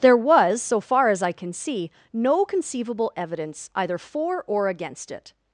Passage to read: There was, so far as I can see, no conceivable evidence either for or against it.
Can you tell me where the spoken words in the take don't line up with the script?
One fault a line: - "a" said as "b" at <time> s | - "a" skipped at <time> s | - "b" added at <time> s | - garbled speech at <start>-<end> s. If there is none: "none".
none